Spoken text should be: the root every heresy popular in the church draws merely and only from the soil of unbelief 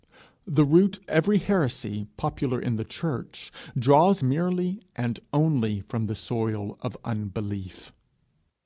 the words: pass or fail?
pass